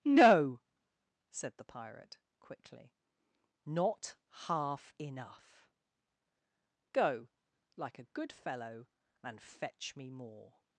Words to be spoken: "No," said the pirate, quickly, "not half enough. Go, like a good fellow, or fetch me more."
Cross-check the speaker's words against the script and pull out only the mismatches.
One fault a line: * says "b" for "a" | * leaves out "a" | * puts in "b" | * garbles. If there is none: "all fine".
* says "and" for "or"